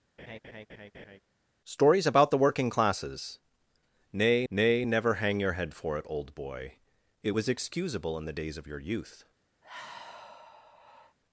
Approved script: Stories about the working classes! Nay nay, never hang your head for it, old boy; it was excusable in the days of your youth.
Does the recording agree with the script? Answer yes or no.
yes